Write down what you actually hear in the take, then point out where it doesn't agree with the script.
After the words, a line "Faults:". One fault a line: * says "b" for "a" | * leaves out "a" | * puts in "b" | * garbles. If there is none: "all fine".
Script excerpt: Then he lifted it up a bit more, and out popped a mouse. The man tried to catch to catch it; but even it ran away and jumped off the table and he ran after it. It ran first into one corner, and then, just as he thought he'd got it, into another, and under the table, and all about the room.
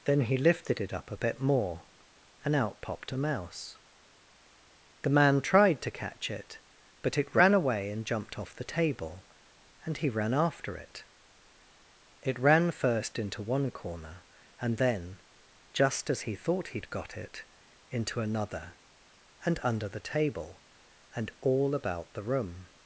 Then he lifted it up a bit more, and out popped a mouse. The man tried to catch it; but it ran away and jumped off the table and he ran after it. It ran first into one corner, and then, just as he thought he'd got it, into another, and under the table, and all about the room.
Faults:
* leaves out "to catch"
* leaves out "even"